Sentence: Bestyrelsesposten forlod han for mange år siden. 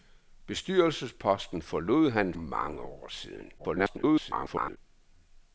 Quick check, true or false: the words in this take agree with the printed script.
false